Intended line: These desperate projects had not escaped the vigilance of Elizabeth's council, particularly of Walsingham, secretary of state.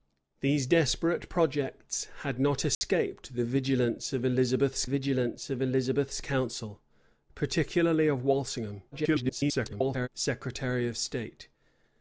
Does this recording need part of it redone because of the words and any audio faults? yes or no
yes